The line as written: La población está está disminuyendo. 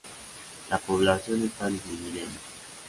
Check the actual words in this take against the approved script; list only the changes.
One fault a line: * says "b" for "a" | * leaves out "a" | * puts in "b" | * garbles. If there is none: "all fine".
* leaves out "está"